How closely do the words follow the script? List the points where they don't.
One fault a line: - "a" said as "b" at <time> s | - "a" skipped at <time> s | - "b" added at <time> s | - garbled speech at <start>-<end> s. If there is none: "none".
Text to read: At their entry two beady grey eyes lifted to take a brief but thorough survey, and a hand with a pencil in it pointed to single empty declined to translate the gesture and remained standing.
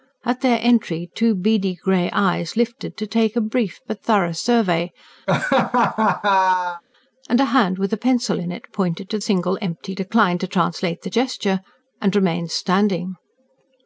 none